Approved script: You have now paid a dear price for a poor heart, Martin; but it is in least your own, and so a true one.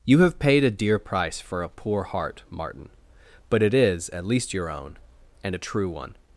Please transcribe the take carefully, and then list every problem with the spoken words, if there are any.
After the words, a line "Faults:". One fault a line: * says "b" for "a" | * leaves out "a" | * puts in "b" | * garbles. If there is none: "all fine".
You have paid a dear price for a poor heart, Martin; but it is at least your own, and a true one.
Faults:
* leaves out "now"
* says "at" for "in"
* leaves out "so"